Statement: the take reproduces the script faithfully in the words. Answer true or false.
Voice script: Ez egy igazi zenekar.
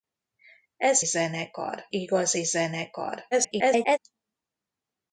false